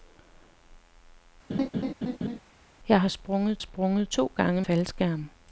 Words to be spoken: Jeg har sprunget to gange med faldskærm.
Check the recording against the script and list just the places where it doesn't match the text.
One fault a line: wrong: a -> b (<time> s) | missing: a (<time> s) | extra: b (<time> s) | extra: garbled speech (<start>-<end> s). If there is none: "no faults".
extra: sprunget (3.6 s)
missing: med (4.6 s)